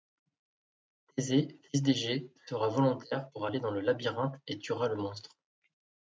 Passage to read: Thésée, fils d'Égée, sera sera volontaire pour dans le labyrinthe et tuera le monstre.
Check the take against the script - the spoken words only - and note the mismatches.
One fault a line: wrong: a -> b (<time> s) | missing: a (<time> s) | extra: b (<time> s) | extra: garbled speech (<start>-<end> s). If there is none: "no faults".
missing: sera (2.7 s)
extra: aller (3.4 s)